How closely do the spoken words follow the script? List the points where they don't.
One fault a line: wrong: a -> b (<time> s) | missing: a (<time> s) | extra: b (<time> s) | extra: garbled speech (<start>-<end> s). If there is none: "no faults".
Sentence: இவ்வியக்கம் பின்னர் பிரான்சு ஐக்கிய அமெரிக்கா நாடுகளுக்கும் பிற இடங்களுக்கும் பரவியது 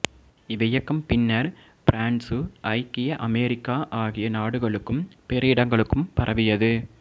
extra: ஆகிய (4.0 s)